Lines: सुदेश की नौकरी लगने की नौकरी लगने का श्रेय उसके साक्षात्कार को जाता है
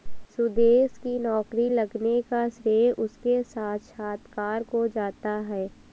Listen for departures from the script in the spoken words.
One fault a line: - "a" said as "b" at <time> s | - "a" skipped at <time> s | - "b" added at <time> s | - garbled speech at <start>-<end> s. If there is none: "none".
- "की नौकरी लगने" skipped at 2.2 s